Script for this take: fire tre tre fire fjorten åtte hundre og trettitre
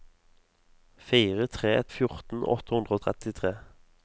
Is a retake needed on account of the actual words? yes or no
yes